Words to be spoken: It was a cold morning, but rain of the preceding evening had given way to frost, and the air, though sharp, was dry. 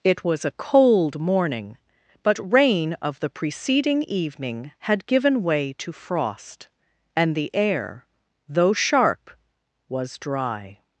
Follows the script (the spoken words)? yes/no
yes